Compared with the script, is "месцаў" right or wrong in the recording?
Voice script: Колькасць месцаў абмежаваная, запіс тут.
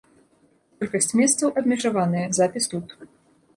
right